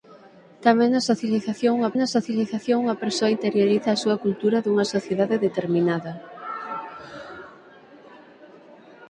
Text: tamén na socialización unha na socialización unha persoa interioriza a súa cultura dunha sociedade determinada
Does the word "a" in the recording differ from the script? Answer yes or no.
no